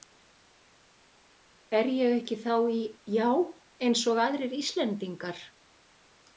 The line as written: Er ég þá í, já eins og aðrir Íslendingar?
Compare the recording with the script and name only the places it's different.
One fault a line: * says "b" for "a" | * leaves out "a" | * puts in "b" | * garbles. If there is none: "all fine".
* puts in "ekki"